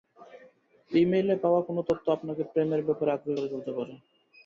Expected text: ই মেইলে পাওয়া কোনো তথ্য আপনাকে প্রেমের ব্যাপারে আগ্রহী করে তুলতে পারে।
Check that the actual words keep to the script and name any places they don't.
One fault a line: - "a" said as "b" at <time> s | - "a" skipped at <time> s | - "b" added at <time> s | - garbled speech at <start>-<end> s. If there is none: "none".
none